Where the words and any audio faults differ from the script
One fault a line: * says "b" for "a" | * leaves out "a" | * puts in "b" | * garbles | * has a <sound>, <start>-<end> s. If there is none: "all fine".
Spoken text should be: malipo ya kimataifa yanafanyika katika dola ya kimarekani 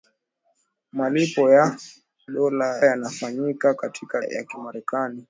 * says "dola" for "kimataifa"
* leaves out "dola"